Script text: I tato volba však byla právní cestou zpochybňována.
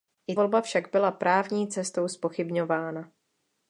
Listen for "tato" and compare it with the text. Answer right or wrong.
wrong